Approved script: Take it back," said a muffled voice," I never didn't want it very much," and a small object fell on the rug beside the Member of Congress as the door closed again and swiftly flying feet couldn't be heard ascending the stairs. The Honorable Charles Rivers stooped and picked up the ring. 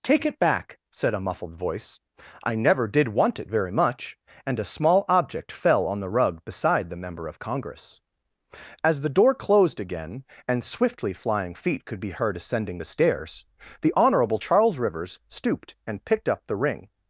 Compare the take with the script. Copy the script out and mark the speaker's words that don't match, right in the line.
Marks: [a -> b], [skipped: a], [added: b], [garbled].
Take it back," said a muffled voice," I never [didn't -> did] want it very much," and a small object fell on the rug beside the Member of Congress as the door closed again and swiftly flying feet [couldn't -> could] be heard ascending the stairs. The Honorable Charles Rivers stooped and picked up the ring.